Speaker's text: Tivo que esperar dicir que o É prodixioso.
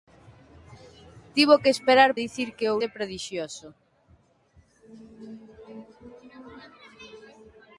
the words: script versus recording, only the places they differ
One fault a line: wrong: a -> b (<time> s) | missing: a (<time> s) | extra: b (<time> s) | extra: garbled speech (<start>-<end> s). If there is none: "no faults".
no faults